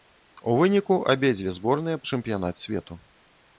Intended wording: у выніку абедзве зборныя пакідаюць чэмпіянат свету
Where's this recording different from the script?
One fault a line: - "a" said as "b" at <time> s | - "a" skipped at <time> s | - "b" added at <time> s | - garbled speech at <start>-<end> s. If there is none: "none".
- "пакідаюць" skipped at 2.0 s